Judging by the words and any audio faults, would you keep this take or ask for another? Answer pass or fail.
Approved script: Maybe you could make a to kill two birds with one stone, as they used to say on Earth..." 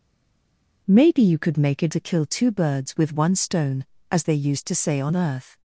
pass